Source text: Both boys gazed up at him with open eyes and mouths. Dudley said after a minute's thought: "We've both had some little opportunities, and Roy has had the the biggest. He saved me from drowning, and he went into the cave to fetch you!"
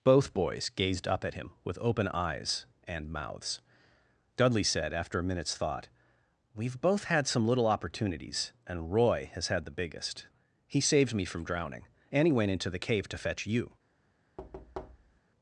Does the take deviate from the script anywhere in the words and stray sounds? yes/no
yes